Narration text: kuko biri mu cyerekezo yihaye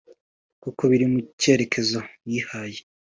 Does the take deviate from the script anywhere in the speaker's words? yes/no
no